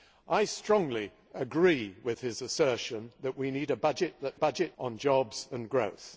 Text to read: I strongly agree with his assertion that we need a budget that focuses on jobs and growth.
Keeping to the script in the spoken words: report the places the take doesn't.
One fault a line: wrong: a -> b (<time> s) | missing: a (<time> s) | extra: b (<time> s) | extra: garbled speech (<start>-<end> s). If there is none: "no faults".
wrong: focuses -> budget (4.3 s)